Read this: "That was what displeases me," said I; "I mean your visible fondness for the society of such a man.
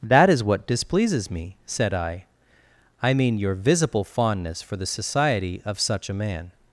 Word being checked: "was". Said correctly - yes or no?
no